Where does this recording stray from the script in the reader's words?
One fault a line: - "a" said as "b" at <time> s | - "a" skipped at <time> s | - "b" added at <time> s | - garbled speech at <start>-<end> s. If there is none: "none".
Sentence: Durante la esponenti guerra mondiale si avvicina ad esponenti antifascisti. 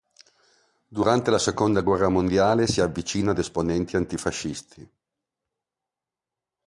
- "esponenti" said as "seconda" at 1.4 s